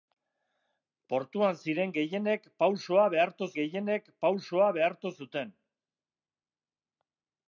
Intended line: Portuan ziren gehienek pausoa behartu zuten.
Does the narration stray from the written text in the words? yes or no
yes